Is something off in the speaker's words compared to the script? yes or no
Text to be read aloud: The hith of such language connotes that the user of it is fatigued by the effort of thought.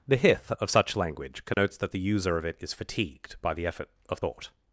no